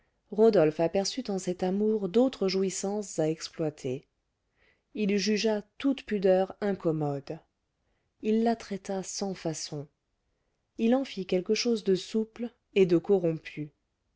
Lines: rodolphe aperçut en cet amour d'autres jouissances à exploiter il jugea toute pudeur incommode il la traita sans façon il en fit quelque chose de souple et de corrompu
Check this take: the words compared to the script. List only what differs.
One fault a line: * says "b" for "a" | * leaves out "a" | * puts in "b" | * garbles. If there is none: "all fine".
all fine